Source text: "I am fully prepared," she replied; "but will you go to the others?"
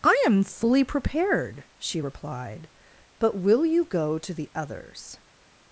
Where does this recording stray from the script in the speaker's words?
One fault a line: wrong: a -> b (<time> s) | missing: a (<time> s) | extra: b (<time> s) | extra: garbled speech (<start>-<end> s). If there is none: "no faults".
no faults